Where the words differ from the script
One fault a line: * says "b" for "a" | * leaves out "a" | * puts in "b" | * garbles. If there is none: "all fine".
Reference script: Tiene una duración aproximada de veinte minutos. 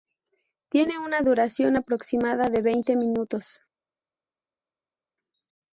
all fine